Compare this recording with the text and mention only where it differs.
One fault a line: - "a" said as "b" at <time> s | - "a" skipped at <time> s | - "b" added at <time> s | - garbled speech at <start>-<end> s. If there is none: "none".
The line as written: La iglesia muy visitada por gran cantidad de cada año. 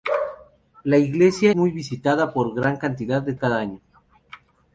none